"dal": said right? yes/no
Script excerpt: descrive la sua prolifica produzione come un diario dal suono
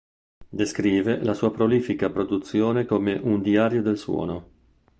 no